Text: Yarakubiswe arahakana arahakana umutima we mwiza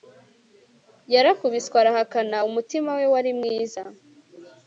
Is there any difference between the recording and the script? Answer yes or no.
yes